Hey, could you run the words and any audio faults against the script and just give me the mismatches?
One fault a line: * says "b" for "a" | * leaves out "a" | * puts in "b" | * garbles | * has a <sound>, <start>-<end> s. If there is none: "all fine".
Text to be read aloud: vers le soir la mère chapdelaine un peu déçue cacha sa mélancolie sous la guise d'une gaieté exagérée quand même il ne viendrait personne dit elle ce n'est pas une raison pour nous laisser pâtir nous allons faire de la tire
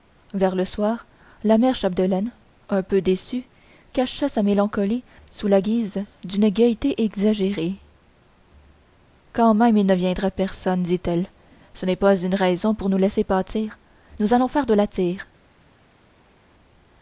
all fine